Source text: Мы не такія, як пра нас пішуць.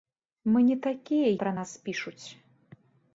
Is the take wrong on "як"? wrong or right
wrong